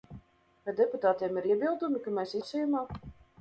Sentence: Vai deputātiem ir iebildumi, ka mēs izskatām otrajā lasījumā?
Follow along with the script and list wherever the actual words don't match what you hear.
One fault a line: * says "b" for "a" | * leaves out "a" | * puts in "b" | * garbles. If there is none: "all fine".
* leaves out "izskatām otrajā"